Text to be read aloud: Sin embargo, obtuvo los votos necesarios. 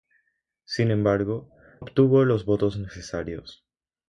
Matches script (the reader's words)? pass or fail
pass